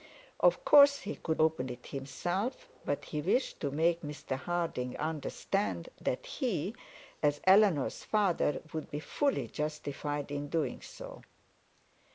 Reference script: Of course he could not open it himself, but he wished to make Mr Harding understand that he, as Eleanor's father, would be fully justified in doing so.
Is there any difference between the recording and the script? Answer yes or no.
yes